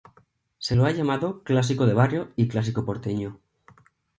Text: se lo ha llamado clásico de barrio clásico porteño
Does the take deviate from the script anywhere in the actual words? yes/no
yes